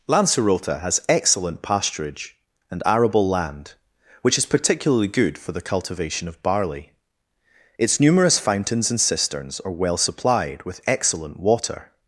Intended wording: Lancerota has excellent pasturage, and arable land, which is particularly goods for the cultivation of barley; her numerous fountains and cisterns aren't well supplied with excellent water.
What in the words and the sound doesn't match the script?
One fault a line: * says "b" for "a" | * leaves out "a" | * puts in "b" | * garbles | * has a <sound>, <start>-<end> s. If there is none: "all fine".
* says "good" for "goods"
* says "its" for "her"
* says "are" for "aren't"